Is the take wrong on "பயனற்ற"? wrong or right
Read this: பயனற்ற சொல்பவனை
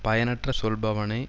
right